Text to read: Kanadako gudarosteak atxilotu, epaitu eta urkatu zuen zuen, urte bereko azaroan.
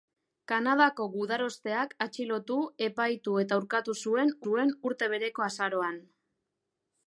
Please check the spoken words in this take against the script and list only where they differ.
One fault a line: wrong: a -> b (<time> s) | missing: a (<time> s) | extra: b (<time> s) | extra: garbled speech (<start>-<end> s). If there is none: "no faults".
no faults